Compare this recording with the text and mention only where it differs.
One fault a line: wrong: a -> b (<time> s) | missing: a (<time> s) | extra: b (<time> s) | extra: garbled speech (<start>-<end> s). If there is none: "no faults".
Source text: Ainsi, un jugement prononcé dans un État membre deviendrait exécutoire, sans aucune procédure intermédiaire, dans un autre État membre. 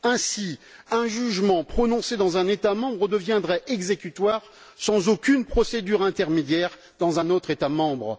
no faults